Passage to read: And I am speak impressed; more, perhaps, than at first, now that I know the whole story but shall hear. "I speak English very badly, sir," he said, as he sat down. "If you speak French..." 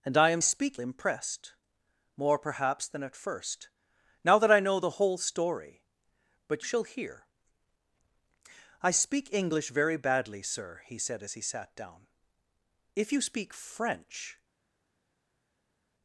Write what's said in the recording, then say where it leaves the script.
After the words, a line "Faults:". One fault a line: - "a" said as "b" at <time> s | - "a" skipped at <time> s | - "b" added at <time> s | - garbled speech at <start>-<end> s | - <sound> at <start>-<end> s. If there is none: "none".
And I am speak impressed; more, perhaps, than at first, now that I know the whole story but shall hear. "I speak English very badly, sir," he said, as he sat down. "If you speak French..."
Faults:
none